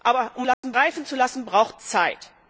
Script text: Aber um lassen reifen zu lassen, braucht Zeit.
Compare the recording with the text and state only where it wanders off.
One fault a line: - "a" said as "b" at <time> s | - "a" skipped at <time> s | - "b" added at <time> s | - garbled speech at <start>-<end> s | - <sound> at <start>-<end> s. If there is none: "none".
- dropout at 0.5-0.6 s